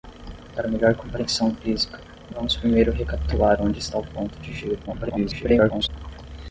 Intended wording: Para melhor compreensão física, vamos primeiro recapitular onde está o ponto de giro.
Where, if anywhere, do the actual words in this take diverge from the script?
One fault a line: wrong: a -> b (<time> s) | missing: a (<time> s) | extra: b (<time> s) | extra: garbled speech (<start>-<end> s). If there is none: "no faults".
extra: garbled speech (4.9-5.9 s)